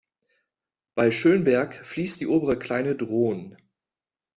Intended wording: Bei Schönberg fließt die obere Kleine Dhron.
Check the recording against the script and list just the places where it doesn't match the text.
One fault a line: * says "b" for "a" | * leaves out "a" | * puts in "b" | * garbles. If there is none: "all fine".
all fine